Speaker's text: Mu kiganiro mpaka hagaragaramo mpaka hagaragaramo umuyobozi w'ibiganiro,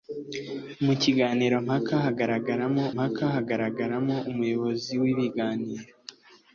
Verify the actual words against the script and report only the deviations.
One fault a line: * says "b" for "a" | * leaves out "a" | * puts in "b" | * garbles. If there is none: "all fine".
all fine